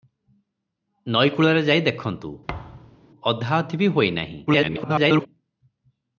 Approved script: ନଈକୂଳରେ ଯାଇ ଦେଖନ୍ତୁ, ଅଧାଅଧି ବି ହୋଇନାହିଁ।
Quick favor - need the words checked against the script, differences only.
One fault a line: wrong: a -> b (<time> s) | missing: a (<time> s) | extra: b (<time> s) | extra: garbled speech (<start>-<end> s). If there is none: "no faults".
extra: garbled speech (4.5-5.3 s)